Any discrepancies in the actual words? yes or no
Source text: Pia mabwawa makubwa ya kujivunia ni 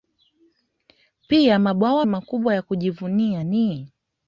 no